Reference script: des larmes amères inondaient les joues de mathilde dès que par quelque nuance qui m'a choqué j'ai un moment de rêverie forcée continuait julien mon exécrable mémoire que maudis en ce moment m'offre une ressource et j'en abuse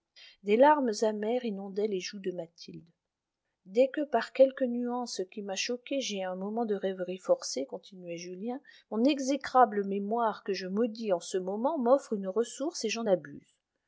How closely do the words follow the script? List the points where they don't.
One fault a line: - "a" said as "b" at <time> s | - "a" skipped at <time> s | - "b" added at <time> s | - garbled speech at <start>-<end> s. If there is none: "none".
- "je" added at 10.5 s